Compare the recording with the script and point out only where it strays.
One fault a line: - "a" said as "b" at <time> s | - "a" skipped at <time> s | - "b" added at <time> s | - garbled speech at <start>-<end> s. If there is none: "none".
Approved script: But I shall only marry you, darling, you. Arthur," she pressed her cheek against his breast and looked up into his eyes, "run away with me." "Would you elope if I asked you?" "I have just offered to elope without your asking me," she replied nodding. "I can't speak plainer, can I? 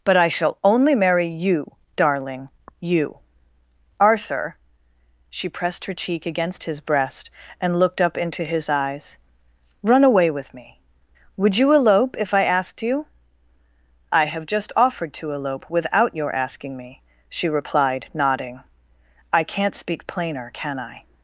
none